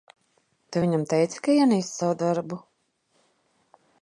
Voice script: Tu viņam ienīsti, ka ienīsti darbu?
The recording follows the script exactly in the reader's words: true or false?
false